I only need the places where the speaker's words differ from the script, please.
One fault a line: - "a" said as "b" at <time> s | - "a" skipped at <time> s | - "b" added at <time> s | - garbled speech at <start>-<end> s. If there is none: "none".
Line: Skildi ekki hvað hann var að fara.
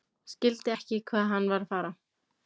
none